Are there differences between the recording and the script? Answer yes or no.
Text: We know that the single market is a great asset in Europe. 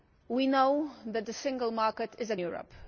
yes